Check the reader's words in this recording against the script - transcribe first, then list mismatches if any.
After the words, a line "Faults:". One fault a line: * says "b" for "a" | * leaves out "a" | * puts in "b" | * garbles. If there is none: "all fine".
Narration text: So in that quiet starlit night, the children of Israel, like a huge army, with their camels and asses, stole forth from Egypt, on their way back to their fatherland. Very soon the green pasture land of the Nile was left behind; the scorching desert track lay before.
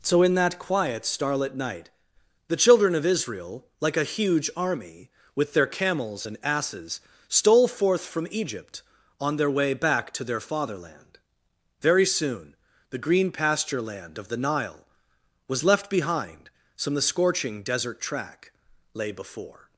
So in that quiet starlit night, the children of Israel, like a huge army, with their camels and asses, stole forth from Egypt, on their way back to their fatherland. Very soon the green pasture land of the Nile was left behind; some the scorching desert track lay before.
Faults:
* puts in "some"